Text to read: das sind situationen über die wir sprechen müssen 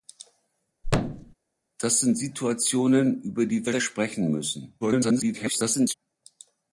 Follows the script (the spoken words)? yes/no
no